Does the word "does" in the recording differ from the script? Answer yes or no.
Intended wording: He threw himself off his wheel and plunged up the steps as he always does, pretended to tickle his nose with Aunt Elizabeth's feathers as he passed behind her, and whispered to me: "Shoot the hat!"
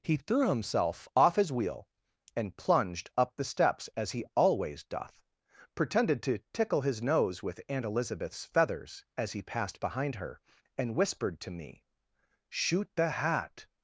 yes